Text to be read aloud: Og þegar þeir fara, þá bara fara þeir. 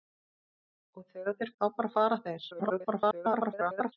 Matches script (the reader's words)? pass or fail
fail